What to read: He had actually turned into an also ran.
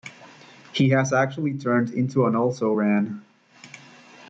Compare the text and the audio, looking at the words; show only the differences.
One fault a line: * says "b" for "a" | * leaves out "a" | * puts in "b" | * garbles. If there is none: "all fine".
* says "has" for "had"